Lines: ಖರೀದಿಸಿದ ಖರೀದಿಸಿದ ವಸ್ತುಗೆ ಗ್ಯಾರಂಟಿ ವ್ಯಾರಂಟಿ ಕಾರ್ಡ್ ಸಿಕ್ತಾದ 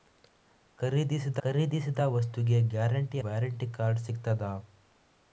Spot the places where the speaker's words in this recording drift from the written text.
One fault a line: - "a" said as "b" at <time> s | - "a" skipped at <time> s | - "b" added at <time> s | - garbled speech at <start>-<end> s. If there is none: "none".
none